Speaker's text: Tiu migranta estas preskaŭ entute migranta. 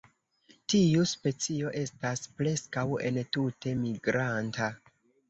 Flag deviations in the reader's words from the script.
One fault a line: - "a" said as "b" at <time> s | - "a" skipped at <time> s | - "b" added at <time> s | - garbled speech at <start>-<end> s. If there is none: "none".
- "migranta" said as "specio" at 1.1 s